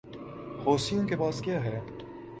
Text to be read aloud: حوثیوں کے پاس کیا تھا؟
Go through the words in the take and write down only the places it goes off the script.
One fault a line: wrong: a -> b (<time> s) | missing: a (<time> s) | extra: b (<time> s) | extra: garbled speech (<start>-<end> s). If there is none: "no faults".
wrong: تھا -> ہے (1.6 s)